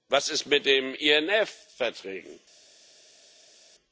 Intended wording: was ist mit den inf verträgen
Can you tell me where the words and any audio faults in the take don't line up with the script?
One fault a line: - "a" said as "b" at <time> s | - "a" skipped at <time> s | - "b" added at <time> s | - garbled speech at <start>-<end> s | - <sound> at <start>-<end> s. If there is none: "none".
none